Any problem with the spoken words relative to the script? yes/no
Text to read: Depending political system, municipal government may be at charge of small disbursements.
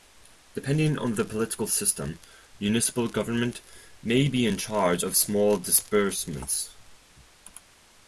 yes